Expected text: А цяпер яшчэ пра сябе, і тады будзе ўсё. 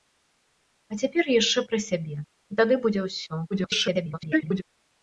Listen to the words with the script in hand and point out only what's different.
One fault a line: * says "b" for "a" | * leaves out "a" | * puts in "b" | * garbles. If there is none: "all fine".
* garbles